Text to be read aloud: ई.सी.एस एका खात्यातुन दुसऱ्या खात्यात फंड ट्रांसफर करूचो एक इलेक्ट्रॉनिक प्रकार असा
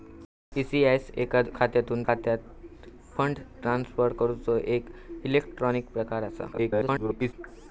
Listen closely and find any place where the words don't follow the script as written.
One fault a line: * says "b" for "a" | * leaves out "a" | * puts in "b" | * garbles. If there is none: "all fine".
* leaves out "दुसऱ्या"
* garbles